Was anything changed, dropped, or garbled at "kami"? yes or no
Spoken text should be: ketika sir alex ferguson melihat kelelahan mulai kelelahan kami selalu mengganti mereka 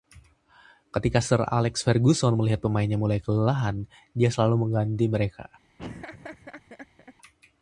yes